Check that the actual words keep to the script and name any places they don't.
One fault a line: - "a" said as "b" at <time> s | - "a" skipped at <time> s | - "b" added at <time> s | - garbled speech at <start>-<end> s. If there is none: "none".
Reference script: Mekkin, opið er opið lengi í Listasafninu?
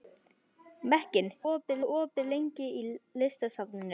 none